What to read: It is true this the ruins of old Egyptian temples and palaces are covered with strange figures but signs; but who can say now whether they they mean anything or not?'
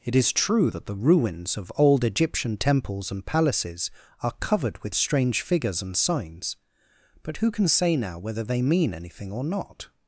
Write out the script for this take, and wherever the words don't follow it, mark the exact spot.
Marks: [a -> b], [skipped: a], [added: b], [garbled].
It is true [this -> that] the ruins of old Egyptian temples and palaces are covered with strange figures [but -> and] signs; but who can say now whether they [skipped: they] mean anything or not?'